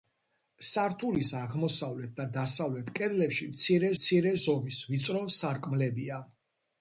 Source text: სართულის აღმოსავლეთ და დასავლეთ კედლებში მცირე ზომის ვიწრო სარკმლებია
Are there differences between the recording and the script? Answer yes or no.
yes